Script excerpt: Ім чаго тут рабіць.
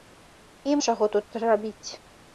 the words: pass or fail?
pass